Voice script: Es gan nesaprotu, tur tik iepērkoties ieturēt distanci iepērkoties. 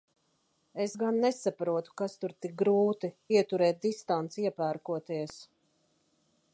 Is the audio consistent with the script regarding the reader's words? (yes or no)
no